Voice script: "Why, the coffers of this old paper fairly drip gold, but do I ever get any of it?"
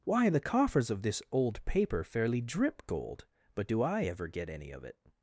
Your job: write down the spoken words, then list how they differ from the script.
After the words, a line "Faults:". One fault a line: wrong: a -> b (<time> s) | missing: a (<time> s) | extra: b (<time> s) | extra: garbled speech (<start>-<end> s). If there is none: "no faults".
"Why, the coffers of this old paper fairly drip gold, but do I ever get any of it?"
Faults:
no faults